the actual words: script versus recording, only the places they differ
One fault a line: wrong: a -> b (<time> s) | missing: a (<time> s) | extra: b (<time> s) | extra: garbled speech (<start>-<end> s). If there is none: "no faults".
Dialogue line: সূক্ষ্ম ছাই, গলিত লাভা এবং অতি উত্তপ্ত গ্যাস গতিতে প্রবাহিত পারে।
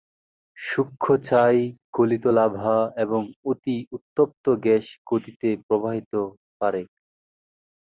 no faults